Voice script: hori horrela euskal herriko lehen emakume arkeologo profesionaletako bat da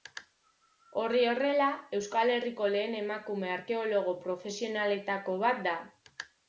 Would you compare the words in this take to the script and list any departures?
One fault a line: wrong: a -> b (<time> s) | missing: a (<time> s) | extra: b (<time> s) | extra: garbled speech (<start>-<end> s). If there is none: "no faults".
no faults